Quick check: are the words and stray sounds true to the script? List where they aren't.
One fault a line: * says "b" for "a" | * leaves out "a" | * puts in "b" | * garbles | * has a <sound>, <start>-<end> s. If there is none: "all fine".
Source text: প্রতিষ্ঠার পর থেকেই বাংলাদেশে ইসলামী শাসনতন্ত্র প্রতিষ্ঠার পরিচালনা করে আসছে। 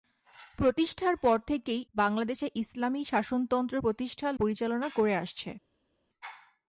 all fine